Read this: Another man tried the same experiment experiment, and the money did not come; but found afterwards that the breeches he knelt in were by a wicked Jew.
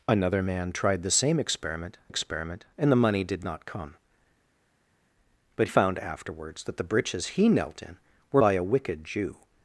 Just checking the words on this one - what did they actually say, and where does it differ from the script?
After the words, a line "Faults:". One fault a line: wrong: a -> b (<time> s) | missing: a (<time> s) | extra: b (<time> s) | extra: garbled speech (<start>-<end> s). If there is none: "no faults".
Another man tried the same experiment experiment, and the money did not come; but found afterwards that the breeches he knelt in were by a wicked Jew.
Faults:
no faults